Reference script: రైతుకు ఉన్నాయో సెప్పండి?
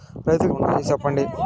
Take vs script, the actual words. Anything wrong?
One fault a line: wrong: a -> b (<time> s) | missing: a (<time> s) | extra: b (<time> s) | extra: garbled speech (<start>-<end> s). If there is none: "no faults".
no faults